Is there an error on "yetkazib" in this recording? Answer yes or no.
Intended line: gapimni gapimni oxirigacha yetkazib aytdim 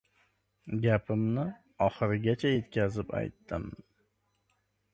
no